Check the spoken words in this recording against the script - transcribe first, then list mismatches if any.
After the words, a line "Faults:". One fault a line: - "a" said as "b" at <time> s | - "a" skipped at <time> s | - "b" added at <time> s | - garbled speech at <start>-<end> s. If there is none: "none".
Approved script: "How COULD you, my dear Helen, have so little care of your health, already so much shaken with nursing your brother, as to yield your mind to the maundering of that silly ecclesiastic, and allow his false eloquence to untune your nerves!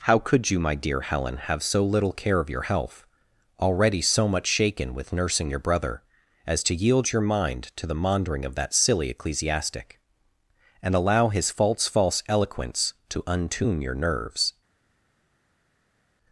"How COULD you, my dear Helen, have so little care of your health, already so much shaken with nursing your brother, as to yield your mind to the maundering of that silly ecclesiastic, and allow his false false eloquence to untune your nerves!
Faults:
- "false" added at 11.9 s